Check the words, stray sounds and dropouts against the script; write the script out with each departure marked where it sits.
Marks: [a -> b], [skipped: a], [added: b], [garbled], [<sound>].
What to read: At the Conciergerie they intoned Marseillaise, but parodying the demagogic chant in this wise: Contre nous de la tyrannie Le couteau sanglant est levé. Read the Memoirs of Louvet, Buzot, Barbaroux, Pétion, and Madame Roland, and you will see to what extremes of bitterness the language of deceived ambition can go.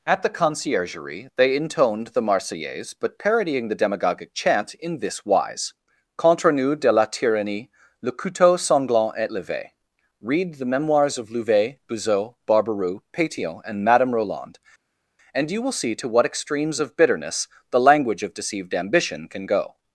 At the Conciergerie they intoned [added: the] Marseillaise, but parodying the demagogic chant in this wise: Contre nous de la tyrannie Le couteau sanglant est levé. Read the Memoirs of Louvet, Buzot, Barbaroux, Pétion, and Madame Roland, and you will see to what extremes of bitterness the language of deceived ambition can go.